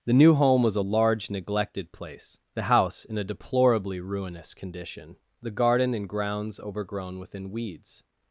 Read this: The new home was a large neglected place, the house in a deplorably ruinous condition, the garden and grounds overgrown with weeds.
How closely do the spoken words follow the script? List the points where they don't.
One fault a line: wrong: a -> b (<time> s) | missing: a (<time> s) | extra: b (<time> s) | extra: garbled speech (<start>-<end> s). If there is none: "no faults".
wrong: with -> within (7.2 s)